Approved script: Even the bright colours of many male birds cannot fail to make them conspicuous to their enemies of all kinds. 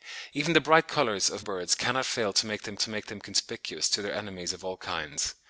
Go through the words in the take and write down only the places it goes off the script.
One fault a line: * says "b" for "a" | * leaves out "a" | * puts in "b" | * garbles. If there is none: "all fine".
* leaves out "many male"
* puts in "to make them"